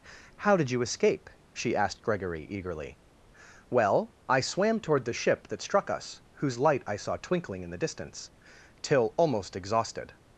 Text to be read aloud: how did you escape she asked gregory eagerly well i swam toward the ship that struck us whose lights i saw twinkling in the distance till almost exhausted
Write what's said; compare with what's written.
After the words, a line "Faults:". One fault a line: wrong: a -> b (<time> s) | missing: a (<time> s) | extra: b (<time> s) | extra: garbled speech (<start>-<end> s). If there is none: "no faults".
how did you escape she asked gregory eagerly well i swam toward the ship that struck us whose light i saw twinkling in the distance till almost exhausted
Faults:
wrong: lights -> light (6.6 s)